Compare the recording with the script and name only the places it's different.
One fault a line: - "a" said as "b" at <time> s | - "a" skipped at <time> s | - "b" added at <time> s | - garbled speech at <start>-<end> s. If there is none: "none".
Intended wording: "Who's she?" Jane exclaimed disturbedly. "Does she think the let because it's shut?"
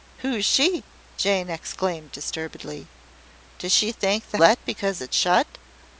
none